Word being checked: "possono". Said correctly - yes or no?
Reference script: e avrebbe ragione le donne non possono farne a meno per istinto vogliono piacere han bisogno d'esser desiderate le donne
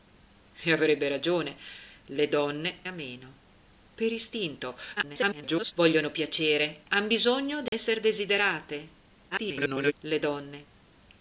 no